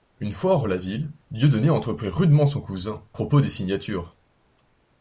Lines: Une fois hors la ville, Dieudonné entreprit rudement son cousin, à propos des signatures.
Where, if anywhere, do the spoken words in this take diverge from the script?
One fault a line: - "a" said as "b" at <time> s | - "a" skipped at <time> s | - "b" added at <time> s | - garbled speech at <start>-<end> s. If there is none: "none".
- "à" skipped at 3.0 s